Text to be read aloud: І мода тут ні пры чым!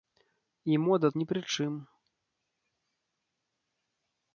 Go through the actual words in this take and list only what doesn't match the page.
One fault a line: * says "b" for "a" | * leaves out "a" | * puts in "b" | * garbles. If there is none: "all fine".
* leaves out "тут"